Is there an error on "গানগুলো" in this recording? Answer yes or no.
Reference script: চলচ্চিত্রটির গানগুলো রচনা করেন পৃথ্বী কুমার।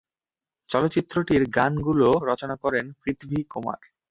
no